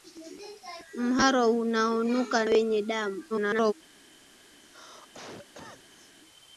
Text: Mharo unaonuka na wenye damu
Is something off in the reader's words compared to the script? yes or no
yes